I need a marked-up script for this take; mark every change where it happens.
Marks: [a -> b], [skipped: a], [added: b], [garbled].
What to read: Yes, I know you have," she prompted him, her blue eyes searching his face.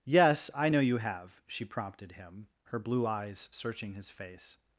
Yes, I know you have," she prompted him, her blue eyes searching his face.